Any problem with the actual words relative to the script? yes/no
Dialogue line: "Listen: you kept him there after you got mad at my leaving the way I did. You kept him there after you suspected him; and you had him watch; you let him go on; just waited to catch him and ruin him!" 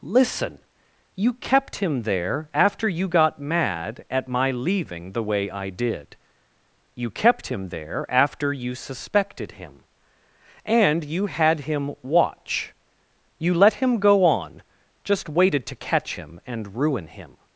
no